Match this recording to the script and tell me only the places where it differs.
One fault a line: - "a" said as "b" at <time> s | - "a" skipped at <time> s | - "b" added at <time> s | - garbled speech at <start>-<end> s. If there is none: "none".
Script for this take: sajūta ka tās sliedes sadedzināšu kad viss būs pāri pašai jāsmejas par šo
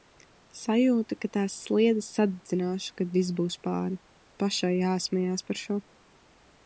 none